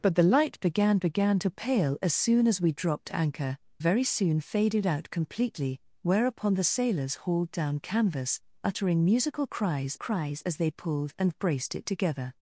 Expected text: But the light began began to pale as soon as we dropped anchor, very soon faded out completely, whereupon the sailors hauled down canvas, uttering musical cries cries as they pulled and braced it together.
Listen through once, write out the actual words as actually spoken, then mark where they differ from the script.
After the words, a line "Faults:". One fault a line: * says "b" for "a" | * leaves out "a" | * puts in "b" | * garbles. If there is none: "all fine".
But the light began began to pale as soon as we dropped anchor, very soon faded out completely, whereupon the sailors hauled down canvas, uttering musical cries cries as they pulled and braced it together.
Faults:
all fine